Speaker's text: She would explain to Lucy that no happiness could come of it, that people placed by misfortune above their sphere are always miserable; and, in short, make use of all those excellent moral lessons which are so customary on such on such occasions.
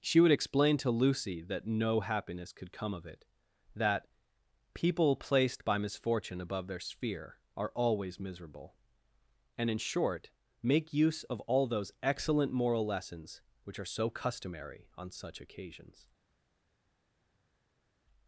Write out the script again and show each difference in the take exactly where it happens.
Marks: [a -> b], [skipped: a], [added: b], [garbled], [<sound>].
She would explain to Lucy that no happiness could come of it, that people placed by misfortune above their sphere are always miserable; and, in short, make use of all those excellent moral lessons which are so customary on such [skipped: on such] occasions.